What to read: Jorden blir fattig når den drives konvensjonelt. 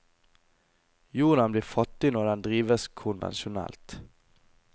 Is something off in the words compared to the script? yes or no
no